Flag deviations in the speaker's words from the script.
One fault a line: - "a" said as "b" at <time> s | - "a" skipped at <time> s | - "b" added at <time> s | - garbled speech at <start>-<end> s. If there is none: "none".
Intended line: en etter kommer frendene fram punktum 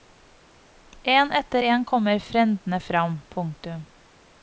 - "en" added at 1.6 s